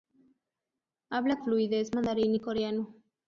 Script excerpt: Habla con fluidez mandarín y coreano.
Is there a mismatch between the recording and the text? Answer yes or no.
yes